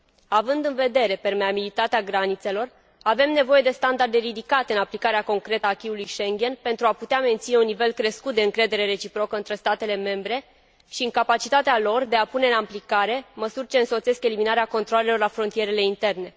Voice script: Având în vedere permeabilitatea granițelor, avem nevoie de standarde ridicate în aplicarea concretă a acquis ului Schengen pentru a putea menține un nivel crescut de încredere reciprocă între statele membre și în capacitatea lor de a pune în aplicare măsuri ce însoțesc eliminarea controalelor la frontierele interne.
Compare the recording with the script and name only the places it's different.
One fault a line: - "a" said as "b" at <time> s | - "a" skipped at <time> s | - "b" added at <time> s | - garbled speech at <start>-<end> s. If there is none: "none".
none